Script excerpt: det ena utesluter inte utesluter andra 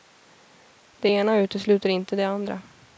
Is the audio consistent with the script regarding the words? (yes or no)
no